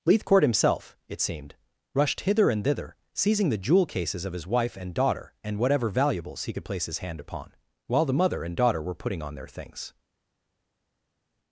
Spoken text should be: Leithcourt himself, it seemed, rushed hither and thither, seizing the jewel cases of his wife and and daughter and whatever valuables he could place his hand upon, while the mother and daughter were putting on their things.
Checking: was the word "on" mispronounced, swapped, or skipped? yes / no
no